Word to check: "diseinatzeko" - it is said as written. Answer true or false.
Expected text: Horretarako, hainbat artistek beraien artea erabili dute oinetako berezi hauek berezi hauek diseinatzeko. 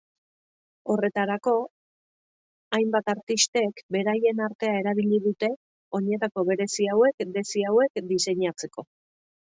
true